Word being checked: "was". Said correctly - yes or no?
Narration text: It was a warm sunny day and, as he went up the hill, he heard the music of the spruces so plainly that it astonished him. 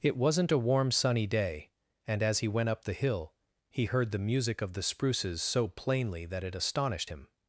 no